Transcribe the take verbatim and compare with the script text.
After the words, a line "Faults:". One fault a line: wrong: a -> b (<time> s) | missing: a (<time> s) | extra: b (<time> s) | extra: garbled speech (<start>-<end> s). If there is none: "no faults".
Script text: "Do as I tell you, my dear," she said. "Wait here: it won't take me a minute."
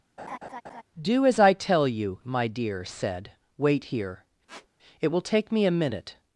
"Do as I tell you, my dear," said. "Wait here: it will take me a minute."
Faults:
missing: she (2.8 s)
wrong: won't -> will (5.1 s)